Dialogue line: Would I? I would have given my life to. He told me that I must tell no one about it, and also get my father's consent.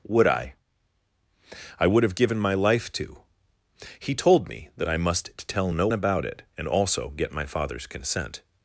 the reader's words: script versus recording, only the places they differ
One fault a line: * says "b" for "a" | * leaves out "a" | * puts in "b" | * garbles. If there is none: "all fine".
* leaves out "one"